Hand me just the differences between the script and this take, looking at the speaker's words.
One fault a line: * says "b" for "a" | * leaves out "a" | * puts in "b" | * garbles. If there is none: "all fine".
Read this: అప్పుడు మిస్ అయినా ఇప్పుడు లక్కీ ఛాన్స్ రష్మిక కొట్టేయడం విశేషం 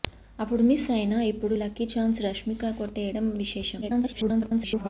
* garbles